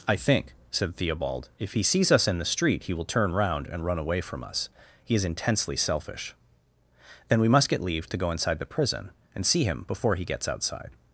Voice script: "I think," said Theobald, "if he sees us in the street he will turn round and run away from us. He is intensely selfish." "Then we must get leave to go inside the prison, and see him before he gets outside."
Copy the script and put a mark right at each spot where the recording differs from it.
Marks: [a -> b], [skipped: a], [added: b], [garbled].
"I think," said Theobald, "if he sees us in the street he will turn round and run away from us. He is intensely selfish." "Then we must get leave to go inside the prison, and see him before he gets outside."